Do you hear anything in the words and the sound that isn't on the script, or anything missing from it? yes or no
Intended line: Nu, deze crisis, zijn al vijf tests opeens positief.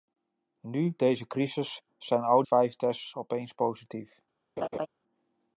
yes